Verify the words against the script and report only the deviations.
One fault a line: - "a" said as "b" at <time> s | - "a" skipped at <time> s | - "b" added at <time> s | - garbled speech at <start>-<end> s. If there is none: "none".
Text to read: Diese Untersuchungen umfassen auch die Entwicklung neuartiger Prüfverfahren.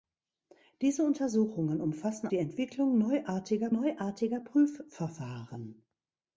- "auch" skipped at 2.3 s
- "neuartiger" added at 3.7 s